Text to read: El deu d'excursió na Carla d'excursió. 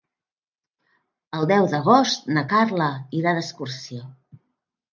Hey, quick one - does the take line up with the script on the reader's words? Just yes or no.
no